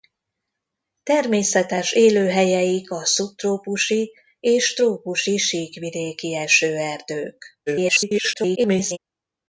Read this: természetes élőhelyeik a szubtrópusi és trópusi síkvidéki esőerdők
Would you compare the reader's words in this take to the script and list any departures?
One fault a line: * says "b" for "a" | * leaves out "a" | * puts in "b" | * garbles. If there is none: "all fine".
* garbles